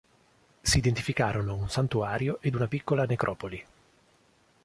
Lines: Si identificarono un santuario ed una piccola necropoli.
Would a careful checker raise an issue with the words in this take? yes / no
no